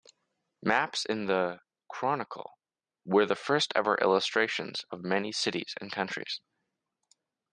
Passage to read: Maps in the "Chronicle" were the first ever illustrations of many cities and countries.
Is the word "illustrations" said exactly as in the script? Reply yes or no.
yes